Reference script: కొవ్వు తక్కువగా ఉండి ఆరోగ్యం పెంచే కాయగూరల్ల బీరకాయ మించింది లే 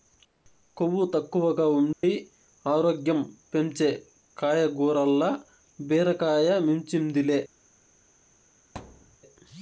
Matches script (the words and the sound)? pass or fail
fail